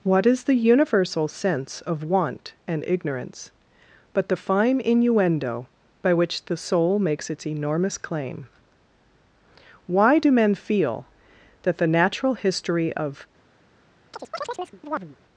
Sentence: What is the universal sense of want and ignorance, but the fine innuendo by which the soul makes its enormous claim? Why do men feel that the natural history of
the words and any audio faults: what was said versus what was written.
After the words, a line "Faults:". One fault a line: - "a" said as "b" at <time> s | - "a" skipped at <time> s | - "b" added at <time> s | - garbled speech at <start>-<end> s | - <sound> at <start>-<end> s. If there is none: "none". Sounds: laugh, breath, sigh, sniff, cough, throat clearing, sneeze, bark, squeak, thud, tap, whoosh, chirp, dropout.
What is the universal sense of want and ignorance, but the fine innuendo by which the soul makes its enormous claim? Why do men feel that the natural history of
Faults:
- chirp at 14.1-15.2 s